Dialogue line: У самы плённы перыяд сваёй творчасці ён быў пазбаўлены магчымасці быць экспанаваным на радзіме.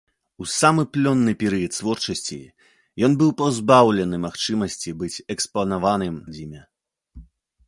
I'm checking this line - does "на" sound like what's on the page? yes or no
no